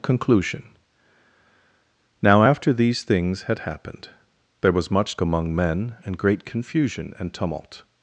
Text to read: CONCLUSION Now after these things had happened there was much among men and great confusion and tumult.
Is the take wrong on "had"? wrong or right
right